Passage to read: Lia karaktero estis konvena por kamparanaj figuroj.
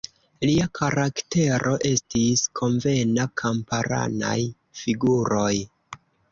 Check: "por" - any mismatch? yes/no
yes